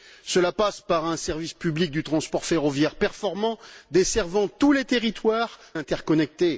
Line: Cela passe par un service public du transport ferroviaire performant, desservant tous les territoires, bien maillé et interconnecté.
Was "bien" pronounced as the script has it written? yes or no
no